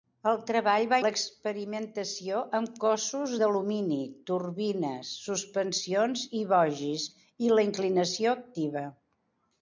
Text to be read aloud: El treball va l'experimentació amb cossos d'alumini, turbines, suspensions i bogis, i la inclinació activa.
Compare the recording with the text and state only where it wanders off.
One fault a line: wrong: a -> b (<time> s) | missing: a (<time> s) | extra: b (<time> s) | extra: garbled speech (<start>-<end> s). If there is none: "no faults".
no faults